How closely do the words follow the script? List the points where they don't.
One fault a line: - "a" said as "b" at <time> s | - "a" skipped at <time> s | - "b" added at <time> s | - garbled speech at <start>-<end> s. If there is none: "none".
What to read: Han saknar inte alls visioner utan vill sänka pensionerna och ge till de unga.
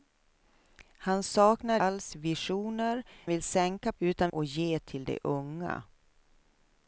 - "inte" skipped at 1.8 s
- "utan" skipped at 3.0 s
- "pensionerna" said as "utan" at 4.0 s